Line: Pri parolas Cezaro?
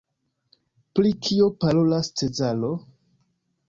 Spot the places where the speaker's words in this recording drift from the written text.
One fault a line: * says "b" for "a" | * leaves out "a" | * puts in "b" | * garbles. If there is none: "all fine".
* puts in "kio"